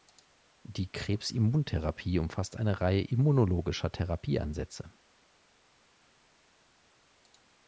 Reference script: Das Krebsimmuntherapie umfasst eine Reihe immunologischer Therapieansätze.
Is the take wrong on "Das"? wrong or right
wrong